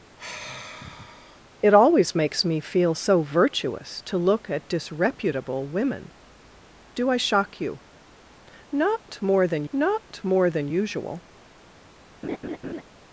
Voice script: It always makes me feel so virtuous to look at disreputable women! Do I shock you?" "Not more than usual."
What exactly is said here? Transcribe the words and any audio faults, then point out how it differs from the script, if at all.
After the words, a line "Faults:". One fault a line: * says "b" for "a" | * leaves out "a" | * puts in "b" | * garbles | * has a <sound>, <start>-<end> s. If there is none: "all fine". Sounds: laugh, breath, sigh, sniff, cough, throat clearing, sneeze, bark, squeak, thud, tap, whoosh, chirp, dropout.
It always makes me feel so virtuous to look at disreputable women! Do I shock you?" "Not more than not more than usual."
Faults:
* has a sigh, 0.2-1.4 s
* puts in "not more than"
* has a laugh, 12.2-12.8 s